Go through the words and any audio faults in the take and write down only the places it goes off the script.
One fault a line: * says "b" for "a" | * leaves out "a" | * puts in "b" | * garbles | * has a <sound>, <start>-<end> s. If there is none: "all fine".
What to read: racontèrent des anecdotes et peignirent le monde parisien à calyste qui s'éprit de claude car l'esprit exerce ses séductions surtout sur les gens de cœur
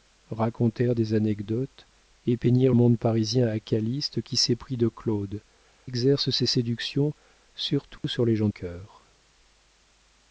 * leaves out "le"
* leaves out "car l'esprit"
* has a dropout, 8.0-8.0 s
* leaves out "de"